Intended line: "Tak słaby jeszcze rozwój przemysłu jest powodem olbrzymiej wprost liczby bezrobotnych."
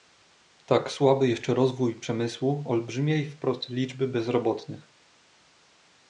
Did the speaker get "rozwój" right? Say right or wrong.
right